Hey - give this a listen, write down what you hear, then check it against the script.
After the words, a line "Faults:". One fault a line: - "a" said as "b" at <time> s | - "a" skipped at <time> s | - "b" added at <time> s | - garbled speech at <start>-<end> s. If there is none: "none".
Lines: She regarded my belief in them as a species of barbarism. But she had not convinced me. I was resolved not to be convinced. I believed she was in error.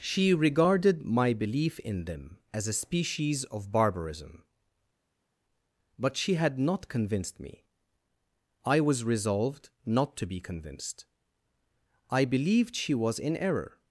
She regarded my belief in them as a species of barbarism. But she had not convinced me. I was resolved not to be convinced. I believed she was in error.
Faults:
none